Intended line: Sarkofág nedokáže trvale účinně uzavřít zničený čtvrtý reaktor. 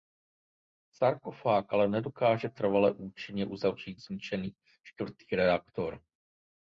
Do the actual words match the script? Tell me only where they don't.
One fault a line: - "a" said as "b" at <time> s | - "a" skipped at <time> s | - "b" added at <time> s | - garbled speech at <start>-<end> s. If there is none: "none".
- "ale" added at 1.7 s